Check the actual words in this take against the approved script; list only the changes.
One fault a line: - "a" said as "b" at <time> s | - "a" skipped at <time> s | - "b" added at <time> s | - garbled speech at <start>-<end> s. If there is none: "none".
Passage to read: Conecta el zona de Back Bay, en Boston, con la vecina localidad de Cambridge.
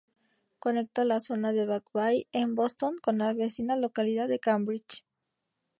- "el" said as "la" at 1.1 s